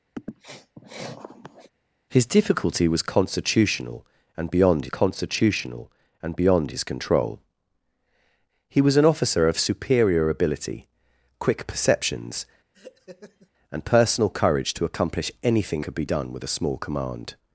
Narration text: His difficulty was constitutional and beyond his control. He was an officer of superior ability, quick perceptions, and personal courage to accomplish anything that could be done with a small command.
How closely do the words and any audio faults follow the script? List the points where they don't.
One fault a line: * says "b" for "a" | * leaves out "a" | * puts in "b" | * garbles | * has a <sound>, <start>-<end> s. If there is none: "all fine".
* has a sniff, 0.2-1.7 s
* puts in "constitutional and beyond"
* has a laugh, 12.7-13.5 s
* leaves out "that"